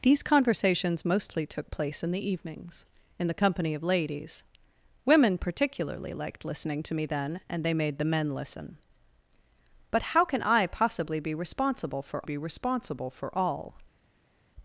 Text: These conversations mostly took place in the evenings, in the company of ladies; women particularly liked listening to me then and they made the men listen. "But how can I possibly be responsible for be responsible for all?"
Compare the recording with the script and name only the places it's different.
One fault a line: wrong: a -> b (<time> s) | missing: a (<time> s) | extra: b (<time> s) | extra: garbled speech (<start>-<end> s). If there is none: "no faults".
no faults